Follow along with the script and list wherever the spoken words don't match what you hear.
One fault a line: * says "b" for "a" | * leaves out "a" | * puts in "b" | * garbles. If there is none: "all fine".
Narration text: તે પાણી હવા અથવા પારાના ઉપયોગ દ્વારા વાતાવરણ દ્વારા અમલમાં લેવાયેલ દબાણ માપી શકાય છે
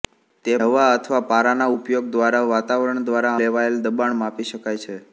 * leaves out "પાણી"
* leaves out "અમલમાં"